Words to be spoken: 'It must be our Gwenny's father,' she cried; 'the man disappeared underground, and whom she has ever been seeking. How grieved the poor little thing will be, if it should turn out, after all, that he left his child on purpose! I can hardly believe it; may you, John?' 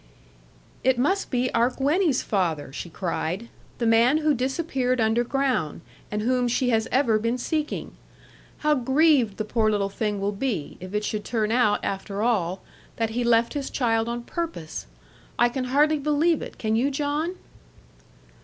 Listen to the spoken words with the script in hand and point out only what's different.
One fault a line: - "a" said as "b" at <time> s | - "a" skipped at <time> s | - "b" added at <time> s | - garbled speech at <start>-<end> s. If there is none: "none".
- "who" added at 4.2 s
- "may" said as "can" at 16.6 s